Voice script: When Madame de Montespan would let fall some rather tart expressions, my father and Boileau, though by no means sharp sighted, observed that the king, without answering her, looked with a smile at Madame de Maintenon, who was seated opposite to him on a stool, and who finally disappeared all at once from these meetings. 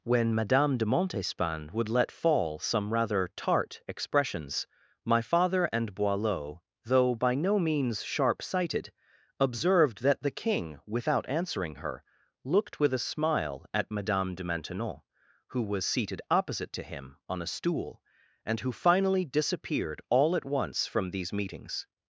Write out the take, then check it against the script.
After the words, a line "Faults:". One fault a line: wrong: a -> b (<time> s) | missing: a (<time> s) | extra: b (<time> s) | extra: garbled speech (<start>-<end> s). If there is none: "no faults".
When Madame de Montespan would let fall some rather tart expressions, my father and Boileau, though by no means sharp sighted, observed that the king, without answering her, looked with a smile at Madame de Maintenon, who was seated opposite to him on a stool, and who finally disappeared all at once from these meetings.
Faults:
no faults